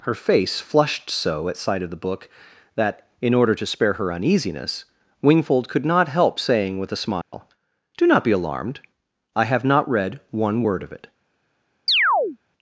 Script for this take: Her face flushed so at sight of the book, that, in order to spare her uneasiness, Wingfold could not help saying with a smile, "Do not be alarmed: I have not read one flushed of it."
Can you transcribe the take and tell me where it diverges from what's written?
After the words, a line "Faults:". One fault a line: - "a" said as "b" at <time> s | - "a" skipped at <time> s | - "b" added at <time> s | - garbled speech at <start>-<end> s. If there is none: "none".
Her face flushed so at sight of the book, that, in order to spare her uneasiness, Wingfold could not help saying with a smile, "Do not be alarmed: I have not read one word of it."
Faults:
- "flushed" said as "word" at 10.6 s